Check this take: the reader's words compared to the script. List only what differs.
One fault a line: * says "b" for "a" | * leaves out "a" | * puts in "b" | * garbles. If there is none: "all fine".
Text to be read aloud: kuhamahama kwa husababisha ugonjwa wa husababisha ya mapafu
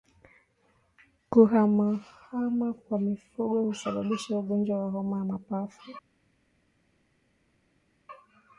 * puts in "mifugo"
* says "homa" for "husababisha"